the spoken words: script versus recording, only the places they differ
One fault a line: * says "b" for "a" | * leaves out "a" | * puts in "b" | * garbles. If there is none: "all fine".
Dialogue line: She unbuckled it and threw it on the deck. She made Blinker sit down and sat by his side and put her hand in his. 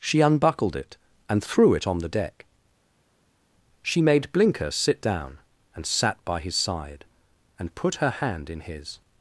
all fine